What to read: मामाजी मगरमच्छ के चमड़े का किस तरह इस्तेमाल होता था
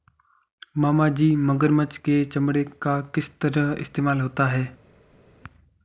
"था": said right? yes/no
no